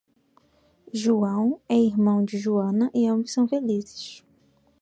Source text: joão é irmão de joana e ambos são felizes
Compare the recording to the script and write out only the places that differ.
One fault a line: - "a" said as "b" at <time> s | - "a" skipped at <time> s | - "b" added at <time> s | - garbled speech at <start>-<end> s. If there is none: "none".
none